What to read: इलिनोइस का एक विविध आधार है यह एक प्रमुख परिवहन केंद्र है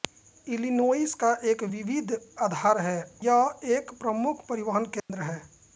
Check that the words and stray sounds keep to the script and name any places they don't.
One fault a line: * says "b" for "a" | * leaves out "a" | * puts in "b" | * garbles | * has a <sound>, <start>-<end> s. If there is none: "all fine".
* has a dropout, 5.0-5.1 s